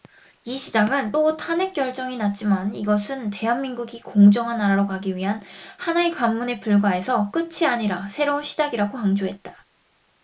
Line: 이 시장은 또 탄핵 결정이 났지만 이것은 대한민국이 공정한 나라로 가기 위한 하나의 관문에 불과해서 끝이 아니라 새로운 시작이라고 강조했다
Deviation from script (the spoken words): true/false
false